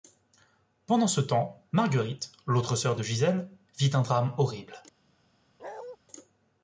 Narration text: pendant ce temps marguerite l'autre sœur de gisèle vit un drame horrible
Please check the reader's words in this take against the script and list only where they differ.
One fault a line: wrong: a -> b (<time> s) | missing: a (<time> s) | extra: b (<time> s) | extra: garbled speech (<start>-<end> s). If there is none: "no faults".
no faults